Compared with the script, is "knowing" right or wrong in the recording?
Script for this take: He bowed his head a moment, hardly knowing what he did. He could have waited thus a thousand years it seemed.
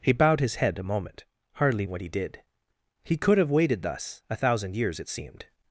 wrong